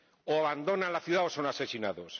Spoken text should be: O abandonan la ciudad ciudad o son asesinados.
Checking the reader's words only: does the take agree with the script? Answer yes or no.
no